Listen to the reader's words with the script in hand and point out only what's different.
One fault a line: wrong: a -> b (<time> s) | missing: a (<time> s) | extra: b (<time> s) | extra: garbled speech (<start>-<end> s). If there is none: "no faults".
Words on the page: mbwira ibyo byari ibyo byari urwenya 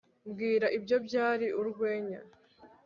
missing: ibyo byari (1.5 s)